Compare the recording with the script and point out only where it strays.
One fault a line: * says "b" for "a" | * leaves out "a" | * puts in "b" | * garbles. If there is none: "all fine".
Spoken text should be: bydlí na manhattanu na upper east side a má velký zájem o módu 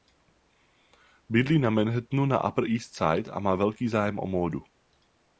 all fine